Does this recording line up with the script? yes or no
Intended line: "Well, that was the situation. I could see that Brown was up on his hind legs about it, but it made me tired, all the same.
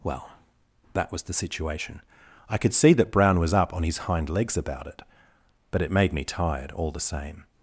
yes